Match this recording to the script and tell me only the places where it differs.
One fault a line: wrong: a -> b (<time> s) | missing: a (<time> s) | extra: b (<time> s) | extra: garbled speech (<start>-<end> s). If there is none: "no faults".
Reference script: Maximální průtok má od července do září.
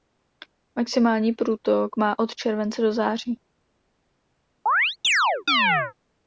no faults